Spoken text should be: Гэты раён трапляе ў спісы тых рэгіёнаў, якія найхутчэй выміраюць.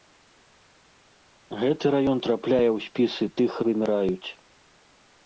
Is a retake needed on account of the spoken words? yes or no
yes